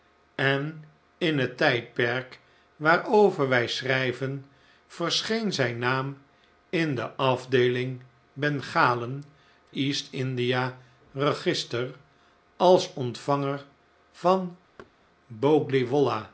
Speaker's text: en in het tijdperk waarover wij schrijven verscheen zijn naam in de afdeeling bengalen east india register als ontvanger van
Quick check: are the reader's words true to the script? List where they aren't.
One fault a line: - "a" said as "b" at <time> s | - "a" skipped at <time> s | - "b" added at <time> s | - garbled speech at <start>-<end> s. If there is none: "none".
none